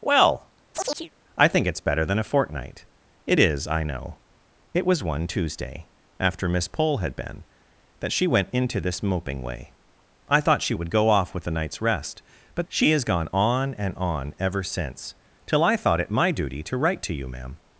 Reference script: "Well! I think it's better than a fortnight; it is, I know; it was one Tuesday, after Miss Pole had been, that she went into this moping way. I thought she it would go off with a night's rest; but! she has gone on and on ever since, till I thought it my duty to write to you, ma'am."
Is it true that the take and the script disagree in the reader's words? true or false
false